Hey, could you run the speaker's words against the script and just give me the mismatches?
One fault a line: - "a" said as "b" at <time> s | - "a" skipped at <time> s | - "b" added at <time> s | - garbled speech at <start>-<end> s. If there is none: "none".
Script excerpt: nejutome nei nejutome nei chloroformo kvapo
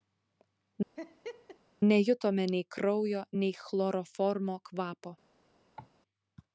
- "nejutome" said as "kraujo" at 2.7 s